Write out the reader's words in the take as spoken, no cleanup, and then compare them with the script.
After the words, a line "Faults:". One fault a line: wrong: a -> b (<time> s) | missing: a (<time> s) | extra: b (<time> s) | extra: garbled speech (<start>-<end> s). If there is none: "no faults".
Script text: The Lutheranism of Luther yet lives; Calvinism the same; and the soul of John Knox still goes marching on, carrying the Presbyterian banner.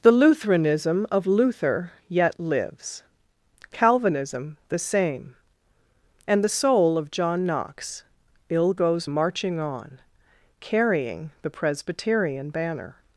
The Lutheranism of Luther yet lives; Calvinism the same; and the soul of John Knox ill goes marching on, carrying the Presbyterian banner.
Faults:
wrong: still -> ill (8.5 s)